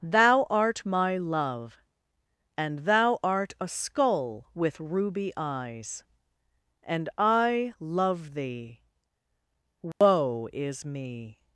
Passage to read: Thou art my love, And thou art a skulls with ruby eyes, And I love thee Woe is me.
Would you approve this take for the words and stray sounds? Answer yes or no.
no